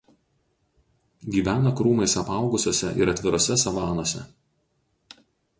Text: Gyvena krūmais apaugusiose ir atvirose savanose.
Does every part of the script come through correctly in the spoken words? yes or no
yes